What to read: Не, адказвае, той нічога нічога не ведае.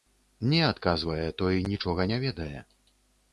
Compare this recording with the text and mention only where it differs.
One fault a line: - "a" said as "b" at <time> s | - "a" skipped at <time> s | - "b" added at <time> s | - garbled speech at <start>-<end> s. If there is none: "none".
- "нічога" skipped at 2.1 s